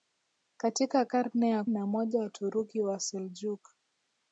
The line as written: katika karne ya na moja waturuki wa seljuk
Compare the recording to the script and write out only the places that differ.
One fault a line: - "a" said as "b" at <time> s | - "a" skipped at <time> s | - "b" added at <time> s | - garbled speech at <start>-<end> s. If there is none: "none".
none